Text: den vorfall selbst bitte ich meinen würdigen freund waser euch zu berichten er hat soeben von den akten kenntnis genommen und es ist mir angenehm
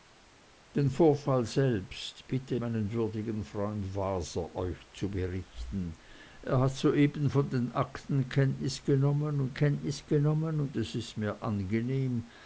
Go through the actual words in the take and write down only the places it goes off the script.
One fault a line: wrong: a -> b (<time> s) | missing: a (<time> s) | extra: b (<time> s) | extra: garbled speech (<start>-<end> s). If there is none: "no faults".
missing: ich (2.5 s)
extra: kenntnis genommen und (9.5 s)